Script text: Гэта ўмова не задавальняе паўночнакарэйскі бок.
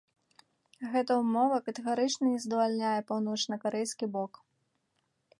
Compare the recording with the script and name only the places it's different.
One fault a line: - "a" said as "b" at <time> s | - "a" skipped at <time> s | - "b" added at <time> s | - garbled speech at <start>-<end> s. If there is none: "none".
- "катэгарычна" added at 1.7 s